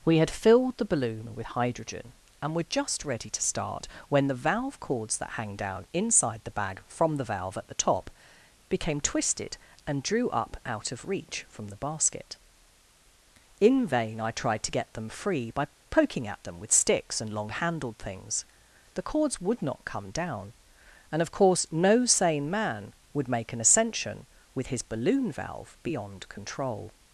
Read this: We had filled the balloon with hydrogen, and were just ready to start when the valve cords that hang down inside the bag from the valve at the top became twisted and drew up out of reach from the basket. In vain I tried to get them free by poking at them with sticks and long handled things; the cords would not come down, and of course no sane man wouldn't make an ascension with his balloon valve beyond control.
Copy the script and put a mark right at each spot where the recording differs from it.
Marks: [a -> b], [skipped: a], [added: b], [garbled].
We had filled the balloon with hydrogen, and were just ready to start when the valve cords that hang down inside the bag from the valve at the top became twisted and drew up out of reach from the basket. In vain I tried to get them free by poking at them with sticks and long handled things; the cords would not come down, and of course no sane man [wouldn't -> would] make an ascension with his balloon valve beyond control.